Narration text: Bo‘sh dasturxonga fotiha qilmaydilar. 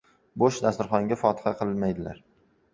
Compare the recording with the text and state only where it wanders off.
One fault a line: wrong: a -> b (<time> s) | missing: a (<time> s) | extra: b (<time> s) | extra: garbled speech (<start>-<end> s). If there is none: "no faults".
no faults